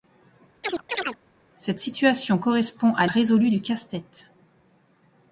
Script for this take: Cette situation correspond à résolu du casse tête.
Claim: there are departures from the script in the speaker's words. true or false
false